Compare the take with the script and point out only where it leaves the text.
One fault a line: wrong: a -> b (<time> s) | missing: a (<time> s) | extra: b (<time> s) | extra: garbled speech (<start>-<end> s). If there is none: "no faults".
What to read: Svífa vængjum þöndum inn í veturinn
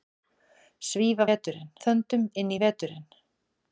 wrong: vængjum -> veturinn (1.3 s)